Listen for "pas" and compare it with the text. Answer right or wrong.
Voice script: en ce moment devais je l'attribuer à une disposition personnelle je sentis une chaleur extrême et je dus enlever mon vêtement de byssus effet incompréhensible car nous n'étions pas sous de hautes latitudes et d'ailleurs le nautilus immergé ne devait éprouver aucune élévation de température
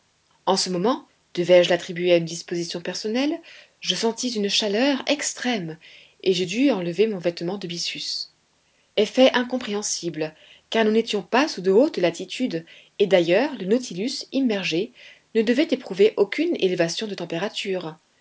right